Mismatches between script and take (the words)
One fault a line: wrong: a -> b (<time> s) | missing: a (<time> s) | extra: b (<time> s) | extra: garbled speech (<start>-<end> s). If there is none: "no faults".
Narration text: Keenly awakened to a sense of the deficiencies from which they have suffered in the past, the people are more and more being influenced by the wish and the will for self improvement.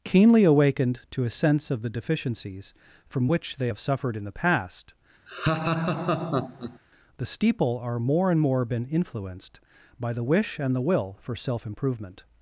wrong: people -> steeple (7.3 s)
wrong: being -> been (8.6 s)